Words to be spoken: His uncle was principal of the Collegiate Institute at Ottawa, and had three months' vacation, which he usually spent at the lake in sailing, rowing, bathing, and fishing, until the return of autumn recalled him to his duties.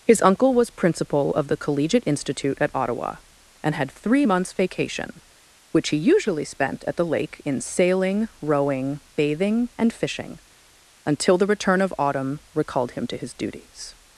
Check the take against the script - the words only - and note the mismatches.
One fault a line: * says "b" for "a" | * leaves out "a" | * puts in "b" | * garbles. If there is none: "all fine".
all fine